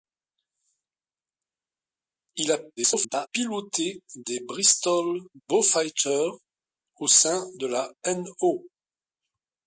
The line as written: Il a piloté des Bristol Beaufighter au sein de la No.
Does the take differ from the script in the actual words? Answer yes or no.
yes